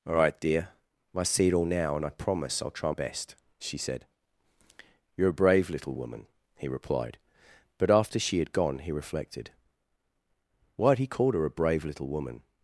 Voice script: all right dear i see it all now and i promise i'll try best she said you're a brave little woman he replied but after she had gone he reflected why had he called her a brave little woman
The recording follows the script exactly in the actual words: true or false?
true